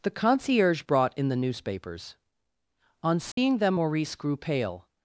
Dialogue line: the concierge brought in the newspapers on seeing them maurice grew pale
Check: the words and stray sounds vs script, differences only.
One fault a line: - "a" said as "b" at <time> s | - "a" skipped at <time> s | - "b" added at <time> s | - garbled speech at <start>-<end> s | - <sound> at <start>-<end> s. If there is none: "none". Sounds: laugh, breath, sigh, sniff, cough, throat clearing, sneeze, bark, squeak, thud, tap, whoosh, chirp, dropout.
- dropout at 3.3-3.4 s